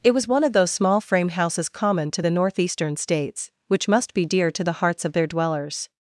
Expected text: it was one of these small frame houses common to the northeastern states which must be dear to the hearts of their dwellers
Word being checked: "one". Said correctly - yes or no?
yes